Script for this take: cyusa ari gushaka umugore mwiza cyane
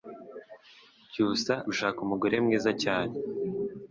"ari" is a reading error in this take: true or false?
true